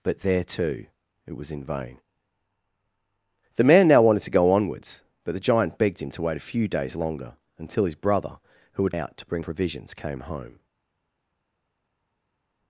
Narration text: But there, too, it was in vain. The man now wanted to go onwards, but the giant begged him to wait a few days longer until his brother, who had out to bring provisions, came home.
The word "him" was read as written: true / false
true